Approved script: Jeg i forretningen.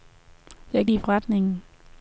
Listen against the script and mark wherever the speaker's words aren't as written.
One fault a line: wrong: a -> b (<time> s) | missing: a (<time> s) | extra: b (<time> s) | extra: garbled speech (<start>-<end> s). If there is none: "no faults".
no faults